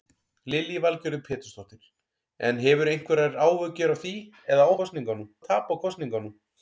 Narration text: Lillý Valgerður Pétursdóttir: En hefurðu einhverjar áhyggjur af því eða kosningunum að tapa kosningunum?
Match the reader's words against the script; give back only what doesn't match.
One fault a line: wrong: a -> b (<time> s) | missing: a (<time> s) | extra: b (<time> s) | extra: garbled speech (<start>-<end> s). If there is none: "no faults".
no faults